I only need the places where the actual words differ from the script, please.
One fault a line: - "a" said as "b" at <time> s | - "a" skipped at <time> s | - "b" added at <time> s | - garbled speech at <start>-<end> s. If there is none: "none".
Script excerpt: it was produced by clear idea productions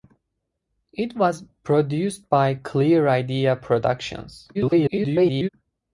- garbled speech at 4.5-5.5 s